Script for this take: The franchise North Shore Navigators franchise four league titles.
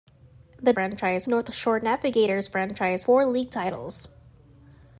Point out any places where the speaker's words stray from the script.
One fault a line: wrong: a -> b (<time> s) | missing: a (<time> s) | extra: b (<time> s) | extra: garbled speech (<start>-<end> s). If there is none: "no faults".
no faults